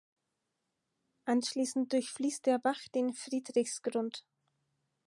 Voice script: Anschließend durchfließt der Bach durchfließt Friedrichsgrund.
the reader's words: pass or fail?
fail